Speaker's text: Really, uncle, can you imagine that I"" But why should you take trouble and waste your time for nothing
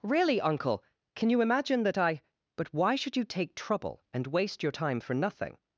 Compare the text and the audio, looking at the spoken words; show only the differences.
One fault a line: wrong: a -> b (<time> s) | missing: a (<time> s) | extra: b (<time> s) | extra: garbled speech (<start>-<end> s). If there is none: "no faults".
no faults